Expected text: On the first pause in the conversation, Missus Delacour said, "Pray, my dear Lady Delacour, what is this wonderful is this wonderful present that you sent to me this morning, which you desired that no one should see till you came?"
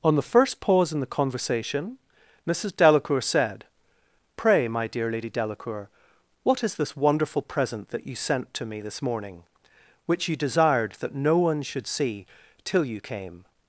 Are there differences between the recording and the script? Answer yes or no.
yes